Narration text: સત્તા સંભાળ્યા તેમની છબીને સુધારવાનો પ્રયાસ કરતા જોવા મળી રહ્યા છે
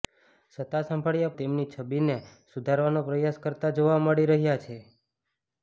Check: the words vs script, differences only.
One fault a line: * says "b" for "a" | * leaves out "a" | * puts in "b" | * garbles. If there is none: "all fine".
all fine